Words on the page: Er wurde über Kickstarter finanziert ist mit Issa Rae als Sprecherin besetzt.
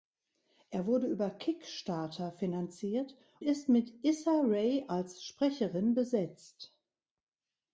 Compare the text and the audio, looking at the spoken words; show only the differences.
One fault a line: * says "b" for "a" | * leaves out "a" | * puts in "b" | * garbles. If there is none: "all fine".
all fine